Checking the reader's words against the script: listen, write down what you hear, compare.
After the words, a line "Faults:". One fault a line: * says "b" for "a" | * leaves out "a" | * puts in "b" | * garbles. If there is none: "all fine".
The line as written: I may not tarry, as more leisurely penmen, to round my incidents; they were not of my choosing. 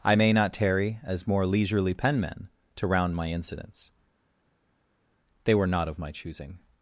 I may not tarry, as more leisurely penmen, to round my incidents; they were not of my choosing.
Faults:
all fine